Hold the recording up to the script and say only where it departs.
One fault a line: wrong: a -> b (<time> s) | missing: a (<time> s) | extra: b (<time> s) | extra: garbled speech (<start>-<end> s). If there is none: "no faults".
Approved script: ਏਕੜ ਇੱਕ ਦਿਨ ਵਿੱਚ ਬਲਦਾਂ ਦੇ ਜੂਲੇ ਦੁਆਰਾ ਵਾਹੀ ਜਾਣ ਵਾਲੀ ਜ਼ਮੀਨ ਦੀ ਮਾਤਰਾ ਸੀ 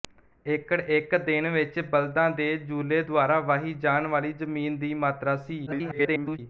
extra: garbled speech (5.7-6.4 s)